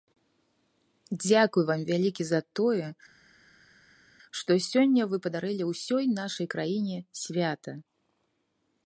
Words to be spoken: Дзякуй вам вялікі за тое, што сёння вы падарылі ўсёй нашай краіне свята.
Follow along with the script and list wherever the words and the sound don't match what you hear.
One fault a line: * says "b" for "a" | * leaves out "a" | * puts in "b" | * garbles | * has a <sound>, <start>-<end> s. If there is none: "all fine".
all fine